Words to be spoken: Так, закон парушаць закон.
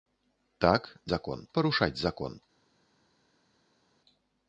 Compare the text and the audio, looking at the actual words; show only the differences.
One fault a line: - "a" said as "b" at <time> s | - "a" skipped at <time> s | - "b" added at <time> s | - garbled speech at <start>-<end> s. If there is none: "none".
none